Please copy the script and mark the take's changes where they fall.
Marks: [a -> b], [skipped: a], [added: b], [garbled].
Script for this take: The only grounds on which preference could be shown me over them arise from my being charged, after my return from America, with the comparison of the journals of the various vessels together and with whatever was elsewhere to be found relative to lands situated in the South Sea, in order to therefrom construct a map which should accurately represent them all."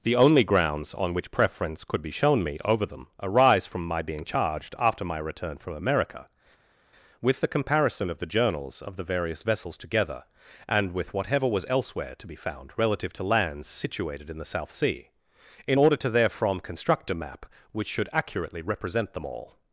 The only grounds on which preference could be shown me over them arise from my being charged, after my return from America, with the comparison of the journals of the various vessels together and with whatever was elsewhere to be found relative to lands situated in the South Sea, in order to therefrom construct a map which should accurately represent them all."